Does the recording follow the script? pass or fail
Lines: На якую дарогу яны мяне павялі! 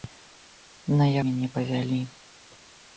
fail